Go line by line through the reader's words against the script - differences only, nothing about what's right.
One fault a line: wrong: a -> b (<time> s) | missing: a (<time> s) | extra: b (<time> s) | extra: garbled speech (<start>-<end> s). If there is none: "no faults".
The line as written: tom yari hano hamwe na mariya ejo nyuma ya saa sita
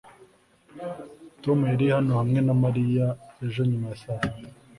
no faults